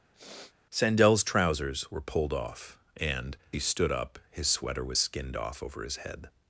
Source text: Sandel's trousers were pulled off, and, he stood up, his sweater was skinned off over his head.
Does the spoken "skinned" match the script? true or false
true